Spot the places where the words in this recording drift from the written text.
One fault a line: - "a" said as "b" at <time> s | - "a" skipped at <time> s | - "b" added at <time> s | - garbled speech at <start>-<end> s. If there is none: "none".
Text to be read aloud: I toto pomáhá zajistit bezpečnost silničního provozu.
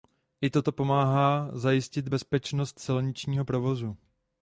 none